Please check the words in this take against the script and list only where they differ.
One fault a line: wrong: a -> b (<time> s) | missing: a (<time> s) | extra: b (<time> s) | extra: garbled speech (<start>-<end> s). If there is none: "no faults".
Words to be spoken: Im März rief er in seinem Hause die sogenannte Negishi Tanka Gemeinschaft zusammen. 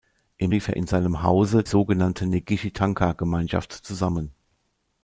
missing: März (0.5 s)
missing: die (1.6 s)